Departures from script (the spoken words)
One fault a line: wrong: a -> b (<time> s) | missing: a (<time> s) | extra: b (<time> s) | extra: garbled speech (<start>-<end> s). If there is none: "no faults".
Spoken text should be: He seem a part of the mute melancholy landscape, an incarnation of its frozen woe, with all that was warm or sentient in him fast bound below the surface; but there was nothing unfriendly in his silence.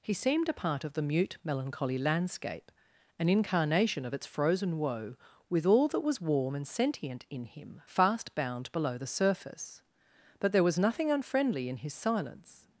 wrong: seem -> seemed (0.1 s)
wrong: or -> and (6.5 s)